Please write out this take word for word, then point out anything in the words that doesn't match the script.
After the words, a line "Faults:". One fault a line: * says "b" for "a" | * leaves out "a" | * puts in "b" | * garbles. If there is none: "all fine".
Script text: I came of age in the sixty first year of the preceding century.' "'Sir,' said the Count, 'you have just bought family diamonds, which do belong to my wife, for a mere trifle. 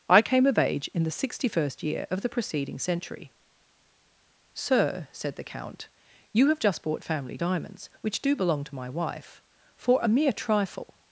I came of age in the sixty first year of the preceding century.' "'Sir,' said the Count, 'you have just bought family diamonds, which do belong to my wife, for a mere trifle.
Faults:
all fine